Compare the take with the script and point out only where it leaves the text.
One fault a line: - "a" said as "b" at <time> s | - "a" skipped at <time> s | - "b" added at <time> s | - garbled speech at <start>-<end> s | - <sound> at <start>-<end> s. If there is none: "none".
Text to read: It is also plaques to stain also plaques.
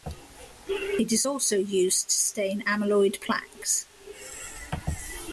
- "plaques" said as "used" at 1.6 s
- "also" said as "amyloid" at 2.6 s